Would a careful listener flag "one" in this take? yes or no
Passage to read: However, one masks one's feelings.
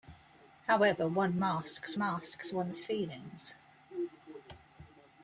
no